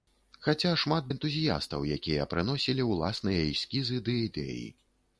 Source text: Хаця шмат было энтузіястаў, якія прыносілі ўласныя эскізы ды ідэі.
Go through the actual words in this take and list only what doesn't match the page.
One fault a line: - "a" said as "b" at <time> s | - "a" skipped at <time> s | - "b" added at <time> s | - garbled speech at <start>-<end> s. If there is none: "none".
- "было" skipped at 1.1 s